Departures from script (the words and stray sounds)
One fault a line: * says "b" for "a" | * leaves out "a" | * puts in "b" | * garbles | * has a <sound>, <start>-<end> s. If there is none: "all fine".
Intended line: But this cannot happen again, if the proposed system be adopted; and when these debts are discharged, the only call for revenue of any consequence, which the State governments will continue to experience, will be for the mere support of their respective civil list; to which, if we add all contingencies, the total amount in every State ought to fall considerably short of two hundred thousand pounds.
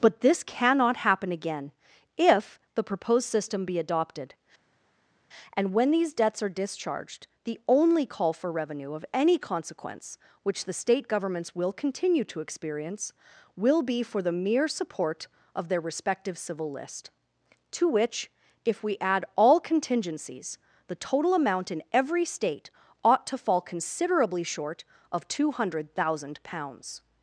all fine